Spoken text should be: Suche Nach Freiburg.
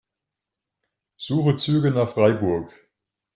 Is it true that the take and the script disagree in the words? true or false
true